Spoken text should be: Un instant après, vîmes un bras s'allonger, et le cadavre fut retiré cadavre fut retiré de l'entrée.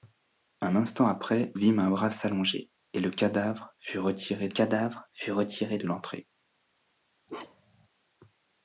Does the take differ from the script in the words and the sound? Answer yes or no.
yes